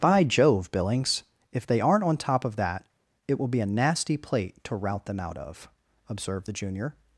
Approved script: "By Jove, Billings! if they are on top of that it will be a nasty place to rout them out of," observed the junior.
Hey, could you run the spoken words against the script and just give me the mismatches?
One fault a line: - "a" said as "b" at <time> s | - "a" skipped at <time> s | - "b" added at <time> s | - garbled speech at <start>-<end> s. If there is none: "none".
- "are" said as "aren't" at 1.8 s
- "place" said as "plate" at 4.2 s